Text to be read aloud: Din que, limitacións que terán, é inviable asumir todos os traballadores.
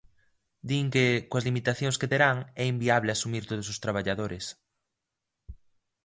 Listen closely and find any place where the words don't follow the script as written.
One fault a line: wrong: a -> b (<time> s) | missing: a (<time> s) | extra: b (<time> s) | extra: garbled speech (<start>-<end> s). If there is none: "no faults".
extra: coas (1.3 s)